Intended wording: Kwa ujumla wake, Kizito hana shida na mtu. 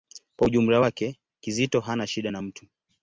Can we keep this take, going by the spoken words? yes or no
yes